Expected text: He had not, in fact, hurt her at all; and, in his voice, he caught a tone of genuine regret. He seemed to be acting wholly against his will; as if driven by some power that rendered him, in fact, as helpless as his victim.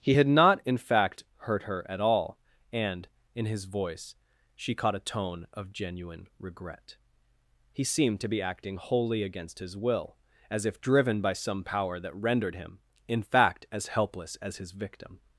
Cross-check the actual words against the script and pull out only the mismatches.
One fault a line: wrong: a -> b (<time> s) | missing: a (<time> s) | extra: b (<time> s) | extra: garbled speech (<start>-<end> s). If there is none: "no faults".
wrong: he -> she (4.6 s)